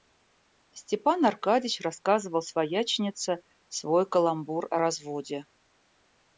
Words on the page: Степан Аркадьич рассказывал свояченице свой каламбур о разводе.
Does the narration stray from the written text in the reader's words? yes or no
no